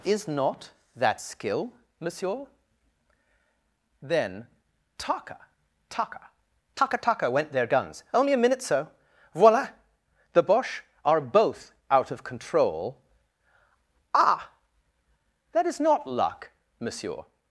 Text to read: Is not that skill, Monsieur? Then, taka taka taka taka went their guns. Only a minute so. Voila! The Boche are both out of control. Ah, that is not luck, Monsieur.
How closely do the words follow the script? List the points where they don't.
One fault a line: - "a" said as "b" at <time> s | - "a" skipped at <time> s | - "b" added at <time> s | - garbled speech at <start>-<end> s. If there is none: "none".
none